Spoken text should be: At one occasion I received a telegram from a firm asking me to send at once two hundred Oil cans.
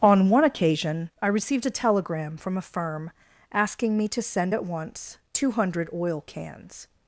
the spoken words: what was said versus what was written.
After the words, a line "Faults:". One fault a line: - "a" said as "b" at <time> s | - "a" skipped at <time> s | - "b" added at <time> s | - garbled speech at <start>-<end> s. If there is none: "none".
On one occasion I received a telegram from a firm asking me to send at once two hundred Oil cans.
Faults:
- "At" said as "On" at 0.0 s